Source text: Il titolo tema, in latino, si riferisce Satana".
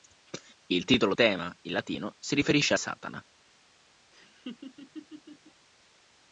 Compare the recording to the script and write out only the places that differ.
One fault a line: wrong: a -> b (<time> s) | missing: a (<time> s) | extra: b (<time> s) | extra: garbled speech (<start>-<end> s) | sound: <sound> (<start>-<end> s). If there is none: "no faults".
sound: laugh (4.1-5.7 s)